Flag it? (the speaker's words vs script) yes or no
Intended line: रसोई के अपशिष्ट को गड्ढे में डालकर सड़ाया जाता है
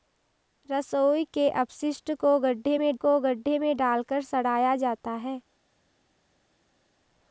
yes